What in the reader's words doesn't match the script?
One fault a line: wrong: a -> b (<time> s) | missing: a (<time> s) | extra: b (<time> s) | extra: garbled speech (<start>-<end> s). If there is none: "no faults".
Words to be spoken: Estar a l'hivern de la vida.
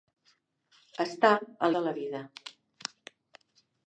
missing: l'hivern (1.7 s)